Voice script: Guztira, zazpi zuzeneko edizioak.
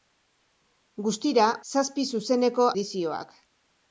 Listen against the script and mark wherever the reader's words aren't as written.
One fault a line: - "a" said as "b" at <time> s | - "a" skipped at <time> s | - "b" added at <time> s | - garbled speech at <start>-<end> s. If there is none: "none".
none